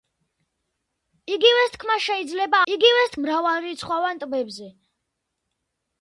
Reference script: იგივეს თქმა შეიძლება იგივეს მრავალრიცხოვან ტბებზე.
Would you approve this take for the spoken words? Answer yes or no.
yes